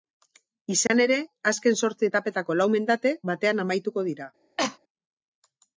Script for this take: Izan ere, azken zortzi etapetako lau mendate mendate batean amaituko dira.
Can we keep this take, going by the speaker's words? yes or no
no